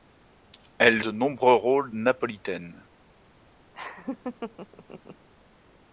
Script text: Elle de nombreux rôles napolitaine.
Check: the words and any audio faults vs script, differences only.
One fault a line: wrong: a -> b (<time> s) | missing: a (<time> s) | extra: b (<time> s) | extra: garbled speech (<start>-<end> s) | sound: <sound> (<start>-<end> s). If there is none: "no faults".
sound: laugh (3.7-5.3 s)